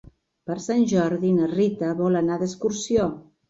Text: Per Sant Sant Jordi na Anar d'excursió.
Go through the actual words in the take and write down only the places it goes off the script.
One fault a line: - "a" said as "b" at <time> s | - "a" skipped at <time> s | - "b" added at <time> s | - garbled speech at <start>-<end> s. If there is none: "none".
- "Sant" skipped at 0.8 s
- "Rita vol" added at 1.6 s